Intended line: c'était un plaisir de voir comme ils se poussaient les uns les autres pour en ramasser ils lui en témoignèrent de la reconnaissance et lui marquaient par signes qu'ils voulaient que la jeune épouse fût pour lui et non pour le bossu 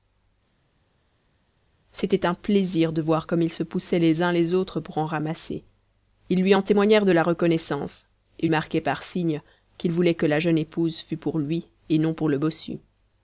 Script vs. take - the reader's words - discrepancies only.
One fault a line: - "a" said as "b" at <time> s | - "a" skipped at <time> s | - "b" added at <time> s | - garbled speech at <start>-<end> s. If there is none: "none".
- "lui" skipped at 8.5 s